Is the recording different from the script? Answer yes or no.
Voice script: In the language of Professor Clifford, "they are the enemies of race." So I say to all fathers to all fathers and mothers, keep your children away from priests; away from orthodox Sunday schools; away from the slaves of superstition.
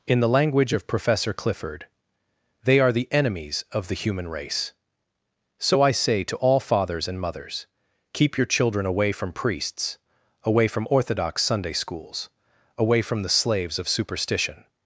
yes